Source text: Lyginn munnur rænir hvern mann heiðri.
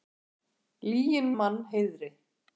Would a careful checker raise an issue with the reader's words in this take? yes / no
yes